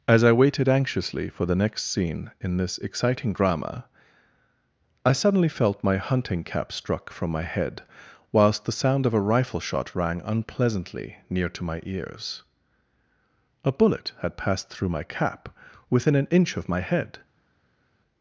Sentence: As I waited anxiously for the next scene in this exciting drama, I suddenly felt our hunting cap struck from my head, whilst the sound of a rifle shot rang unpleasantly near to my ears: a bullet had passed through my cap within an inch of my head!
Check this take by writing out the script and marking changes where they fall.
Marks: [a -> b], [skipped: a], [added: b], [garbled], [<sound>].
As I waited anxiously for the next scene in this exciting drama, I suddenly felt [our -> my] hunting cap struck from my head, whilst the sound of a rifle shot rang unpleasantly near to my ears: a bullet had passed through my cap within an inch of my head!